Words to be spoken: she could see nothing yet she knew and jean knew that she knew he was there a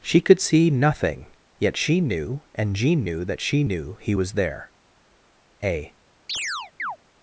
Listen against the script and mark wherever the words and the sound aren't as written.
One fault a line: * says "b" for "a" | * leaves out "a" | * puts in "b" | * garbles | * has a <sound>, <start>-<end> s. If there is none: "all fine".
* has a chirp, 6.3-7.0 s